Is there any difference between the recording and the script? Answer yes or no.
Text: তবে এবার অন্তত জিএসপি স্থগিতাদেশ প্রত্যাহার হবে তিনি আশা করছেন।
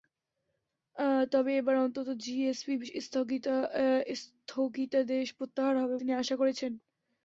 no